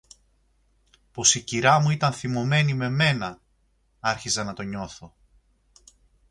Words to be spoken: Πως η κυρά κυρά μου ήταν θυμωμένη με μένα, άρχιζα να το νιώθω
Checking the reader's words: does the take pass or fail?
fail